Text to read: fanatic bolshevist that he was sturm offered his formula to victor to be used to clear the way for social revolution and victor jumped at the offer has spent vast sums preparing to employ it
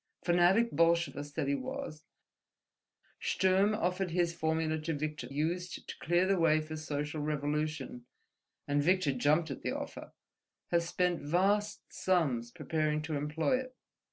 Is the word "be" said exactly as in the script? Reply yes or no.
no